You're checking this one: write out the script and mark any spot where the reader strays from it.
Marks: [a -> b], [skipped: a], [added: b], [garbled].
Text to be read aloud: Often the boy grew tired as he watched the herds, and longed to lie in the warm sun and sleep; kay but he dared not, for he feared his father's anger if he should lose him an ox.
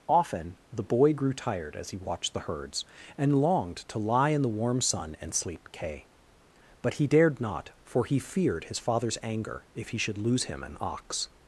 Often the boy grew tired as he watched the herds, and longed to lie in the warm sun and sleep; kay but he dared not, for he feared his father's anger if he should lose him an ox.